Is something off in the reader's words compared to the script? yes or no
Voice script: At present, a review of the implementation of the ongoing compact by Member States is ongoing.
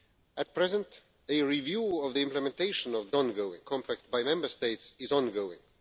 no